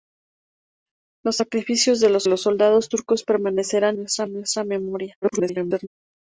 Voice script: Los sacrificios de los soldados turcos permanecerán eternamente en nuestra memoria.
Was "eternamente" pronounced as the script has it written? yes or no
no